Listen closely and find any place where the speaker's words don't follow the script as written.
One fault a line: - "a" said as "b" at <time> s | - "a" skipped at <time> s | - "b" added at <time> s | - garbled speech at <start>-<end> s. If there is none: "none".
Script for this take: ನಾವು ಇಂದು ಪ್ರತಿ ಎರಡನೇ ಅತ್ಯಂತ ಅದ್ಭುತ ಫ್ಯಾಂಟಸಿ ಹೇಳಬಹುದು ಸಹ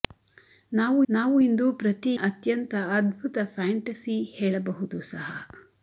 - "ನಾವು" added at 1.1 s
- "ಎರಡನೇ" skipped at 2.1 s